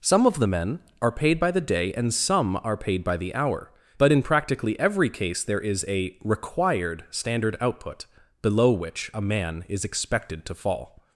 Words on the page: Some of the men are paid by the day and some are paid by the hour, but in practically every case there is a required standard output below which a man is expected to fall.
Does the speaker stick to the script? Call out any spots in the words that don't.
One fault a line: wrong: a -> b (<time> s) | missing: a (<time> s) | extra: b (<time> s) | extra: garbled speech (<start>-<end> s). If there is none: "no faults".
no faults